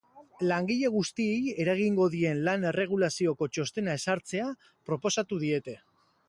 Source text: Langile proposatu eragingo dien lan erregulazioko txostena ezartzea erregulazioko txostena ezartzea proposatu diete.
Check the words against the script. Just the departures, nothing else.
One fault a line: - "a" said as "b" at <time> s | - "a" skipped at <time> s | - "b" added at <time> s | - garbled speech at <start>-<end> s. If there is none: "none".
- "proposatu" said as "guztiei" at 0.9 s
- "erregulazioko txostena ezartzea" skipped at 4.5 s